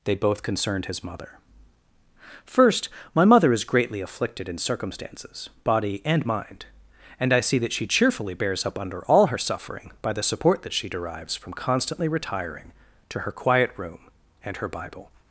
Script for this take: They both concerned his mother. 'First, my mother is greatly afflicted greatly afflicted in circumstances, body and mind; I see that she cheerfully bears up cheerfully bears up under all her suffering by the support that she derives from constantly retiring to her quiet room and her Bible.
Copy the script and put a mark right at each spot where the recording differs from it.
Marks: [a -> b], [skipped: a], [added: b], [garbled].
They both concerned his mother. 'First, my mother is greatly afflicted [skipped: greatly afflicted] in circumstances, body and mind; [added: and] I see that she cheerfully bears up [skipped: cheerfully bears up] under all her suffering by the support that she derives from constantly retiring to her quiet room and her Bible.